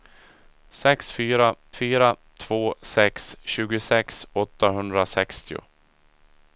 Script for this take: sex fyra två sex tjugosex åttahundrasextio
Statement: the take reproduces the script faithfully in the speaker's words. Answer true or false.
false